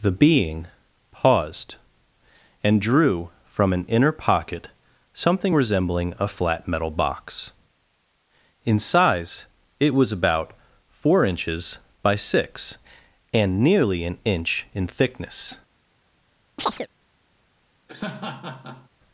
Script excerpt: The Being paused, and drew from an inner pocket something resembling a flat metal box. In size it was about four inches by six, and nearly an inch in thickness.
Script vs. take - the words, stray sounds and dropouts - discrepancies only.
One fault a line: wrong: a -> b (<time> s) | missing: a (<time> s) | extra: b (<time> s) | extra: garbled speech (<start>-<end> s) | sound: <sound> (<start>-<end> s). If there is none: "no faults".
sound: chirp (16.6-16.9 s)
sound: laugh (17.9-18.9 s)